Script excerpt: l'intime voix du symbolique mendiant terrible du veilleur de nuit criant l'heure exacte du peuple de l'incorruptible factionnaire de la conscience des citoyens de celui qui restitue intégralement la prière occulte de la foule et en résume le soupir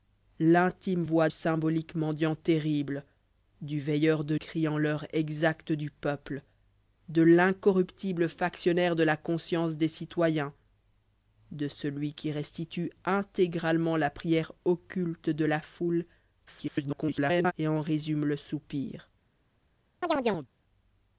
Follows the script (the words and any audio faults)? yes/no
no